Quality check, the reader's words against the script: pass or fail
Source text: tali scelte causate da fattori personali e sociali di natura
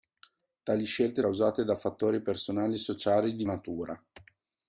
pass